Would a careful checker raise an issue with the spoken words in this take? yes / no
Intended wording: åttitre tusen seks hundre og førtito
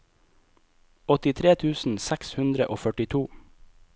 no